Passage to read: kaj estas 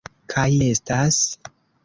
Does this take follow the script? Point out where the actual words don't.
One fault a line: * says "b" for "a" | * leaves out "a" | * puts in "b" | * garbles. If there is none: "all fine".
all fine